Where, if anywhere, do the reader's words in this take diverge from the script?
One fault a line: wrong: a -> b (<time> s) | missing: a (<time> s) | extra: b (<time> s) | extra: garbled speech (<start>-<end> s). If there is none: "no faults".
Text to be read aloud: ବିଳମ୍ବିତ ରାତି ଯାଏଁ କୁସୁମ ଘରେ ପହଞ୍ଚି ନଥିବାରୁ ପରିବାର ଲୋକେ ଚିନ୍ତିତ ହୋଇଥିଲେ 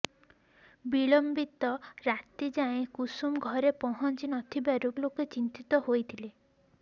missing: ପରିବାର (4.9 s)